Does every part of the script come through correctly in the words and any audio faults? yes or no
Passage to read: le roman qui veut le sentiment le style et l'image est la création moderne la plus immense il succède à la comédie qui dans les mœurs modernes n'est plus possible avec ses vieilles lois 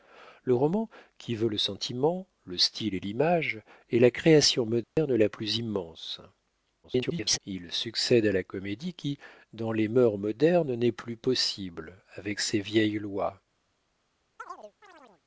no